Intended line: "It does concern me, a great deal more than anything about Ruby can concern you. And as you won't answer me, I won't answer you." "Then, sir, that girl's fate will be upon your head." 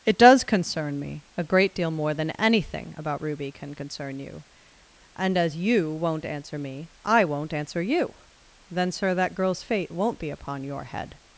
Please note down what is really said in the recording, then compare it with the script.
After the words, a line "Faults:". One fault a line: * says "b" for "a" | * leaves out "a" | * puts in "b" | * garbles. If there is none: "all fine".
"It does concern me, a great deal more than anything about Ruby can concern you. And as you won't answer me, I won't answer you." "Then, sir, that girl's fate won't be upon your head."
Faults:
* says "won't" for "will"